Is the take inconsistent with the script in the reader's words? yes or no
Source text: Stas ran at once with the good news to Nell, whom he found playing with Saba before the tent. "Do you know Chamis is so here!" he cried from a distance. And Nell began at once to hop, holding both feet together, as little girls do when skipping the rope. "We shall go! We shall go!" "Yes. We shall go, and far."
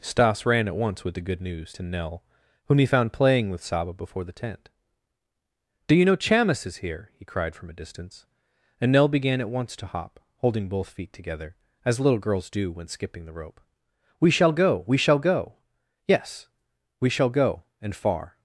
yes